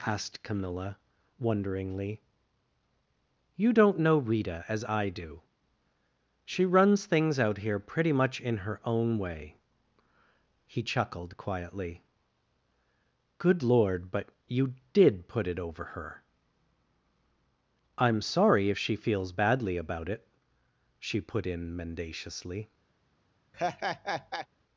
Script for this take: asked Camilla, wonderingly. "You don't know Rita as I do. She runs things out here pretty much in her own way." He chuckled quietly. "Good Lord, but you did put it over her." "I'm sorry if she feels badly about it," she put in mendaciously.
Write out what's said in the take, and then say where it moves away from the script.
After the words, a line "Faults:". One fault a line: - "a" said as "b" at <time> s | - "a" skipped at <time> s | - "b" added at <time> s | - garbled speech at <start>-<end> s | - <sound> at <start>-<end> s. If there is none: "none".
asked Camilla, wonderingly. "You don't know Rita as I do. She runs things out here pretty much in her own way." He chuckled quietly. "Good Lord, but you did put it over her." "I'm sorry if she feels badly about it," she put in mendaciously.
Faults:
- laugh at 23.5-24.5 s